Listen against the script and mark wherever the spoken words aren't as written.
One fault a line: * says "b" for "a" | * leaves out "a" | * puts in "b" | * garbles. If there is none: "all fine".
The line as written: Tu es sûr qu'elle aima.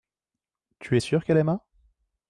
all fine